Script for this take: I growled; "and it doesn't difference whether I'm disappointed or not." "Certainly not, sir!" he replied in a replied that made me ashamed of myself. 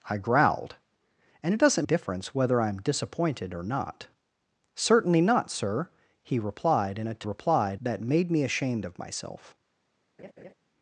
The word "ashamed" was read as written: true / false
true